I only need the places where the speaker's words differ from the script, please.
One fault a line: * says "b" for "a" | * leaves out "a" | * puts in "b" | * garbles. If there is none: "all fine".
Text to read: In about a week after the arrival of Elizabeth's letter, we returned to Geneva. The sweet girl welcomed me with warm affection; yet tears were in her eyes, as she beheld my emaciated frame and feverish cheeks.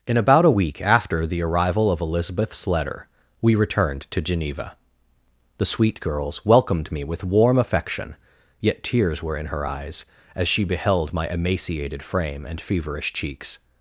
* says "girls" for "girl"